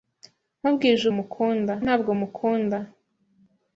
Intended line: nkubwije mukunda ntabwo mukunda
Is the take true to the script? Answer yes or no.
yes